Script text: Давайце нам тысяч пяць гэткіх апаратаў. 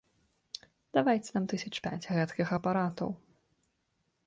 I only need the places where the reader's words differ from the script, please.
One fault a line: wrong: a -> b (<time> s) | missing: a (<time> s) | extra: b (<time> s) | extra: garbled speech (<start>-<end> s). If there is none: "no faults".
no faults